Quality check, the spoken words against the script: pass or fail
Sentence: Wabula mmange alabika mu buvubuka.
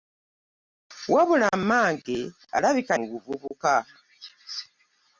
pass